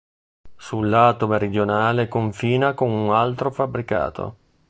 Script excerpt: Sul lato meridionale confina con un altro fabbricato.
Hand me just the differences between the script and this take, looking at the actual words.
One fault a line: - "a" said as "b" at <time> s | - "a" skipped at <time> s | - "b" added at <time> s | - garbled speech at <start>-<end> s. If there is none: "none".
none